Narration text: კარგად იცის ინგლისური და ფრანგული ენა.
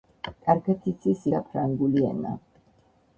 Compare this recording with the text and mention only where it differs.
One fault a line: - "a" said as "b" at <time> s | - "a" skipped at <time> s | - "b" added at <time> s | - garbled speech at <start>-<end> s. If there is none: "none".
- "ინგლისური" skipped at 1.3 s